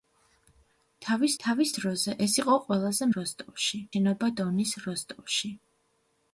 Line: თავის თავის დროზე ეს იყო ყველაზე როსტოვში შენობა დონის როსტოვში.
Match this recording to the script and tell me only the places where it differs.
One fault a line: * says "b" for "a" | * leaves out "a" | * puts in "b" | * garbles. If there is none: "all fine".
all fine